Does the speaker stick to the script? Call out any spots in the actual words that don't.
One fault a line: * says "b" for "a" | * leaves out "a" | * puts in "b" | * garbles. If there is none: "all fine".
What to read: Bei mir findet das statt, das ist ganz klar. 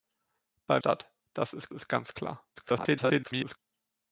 * says "statt" for "mir findet"
* says "ist" for "statt das"
* garbles